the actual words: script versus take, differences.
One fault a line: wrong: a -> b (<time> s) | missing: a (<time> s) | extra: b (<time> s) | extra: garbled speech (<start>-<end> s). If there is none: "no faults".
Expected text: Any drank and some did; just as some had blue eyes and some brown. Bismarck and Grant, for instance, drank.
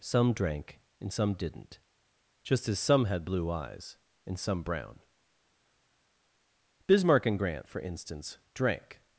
wrong: Any -> Some (0.0 s)
wrong: did -> didn't (1.3 s)